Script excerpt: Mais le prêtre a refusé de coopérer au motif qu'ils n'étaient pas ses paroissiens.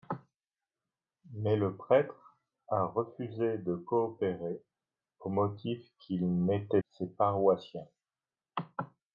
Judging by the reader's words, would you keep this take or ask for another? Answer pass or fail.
fail